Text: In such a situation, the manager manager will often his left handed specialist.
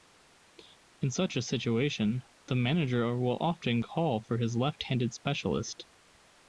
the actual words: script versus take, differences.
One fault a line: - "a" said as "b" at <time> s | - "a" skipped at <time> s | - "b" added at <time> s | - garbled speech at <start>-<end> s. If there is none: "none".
- "manager" skipped at 3.2 s
- "call for" added at 3.8 s